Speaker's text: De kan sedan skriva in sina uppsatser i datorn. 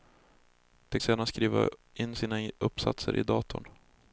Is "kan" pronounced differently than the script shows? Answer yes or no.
yes